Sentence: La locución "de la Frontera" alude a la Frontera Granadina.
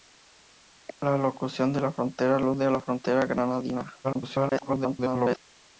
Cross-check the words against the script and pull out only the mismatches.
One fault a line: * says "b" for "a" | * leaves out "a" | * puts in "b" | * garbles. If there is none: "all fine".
* garbles